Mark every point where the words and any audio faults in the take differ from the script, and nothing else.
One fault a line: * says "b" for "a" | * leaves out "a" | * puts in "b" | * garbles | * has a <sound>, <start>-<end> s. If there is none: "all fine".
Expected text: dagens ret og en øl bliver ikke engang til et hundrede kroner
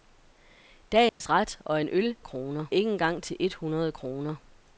* has a dropout, 1.1-1.2 s
* says "kroner" for "bliver"